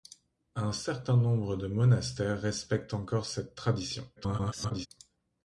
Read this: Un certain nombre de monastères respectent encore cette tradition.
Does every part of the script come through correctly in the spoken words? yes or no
no